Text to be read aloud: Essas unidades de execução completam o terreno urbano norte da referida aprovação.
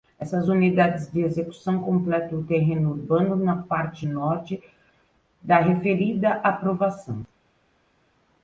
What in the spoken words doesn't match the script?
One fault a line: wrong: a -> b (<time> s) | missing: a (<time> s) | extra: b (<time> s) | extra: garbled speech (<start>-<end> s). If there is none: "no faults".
extra: na parte (3.3 s)